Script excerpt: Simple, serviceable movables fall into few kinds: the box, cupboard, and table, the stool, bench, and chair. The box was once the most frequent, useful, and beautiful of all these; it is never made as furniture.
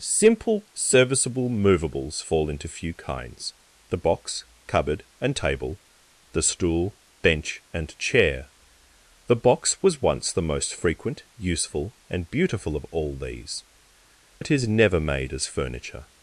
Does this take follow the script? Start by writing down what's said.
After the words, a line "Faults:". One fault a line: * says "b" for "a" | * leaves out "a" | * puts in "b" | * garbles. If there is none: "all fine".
Simple, serviceable movables fall into few kinds: the box, cupboard, and table, the stool, bench, and chair. The box was once the most frequent, useful, and beautiful of all these; it is never made as furniture.
Faults:
all fine